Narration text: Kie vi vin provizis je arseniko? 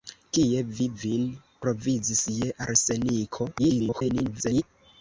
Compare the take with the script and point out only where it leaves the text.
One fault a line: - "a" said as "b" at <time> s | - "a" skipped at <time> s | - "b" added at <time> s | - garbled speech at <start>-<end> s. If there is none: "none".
- garbled speech at 3.6-4.6 s